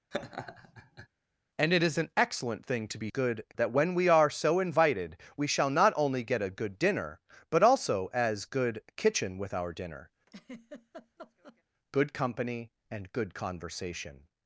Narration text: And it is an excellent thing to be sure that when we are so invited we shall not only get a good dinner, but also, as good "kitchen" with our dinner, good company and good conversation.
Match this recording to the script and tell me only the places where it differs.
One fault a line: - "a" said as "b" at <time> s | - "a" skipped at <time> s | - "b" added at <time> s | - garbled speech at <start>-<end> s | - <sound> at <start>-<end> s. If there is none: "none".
- laugh at 0.1-1.1 s
- "sure" said as "good" at 3.1 s
- laugh at 10.3-11.6 s